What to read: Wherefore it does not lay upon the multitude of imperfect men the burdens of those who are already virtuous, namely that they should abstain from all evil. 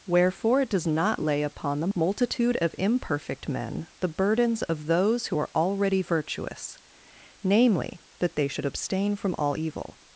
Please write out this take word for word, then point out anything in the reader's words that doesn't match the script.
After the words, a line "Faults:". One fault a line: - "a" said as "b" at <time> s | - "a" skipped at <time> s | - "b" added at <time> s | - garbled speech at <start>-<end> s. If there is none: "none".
Wherefore it does not lay upon the multitude of imperfect men the burdens of those who are already virtuous, namely that they should abstain from all evil.
Faults:
none